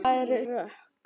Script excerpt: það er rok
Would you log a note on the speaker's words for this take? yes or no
no